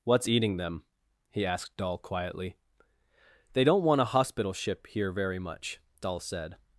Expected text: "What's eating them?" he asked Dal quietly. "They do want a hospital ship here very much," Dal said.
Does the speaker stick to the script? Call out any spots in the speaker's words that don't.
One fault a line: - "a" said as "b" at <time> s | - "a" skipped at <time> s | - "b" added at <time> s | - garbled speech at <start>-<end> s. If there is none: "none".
- "do" said as "don't" at 3.6 s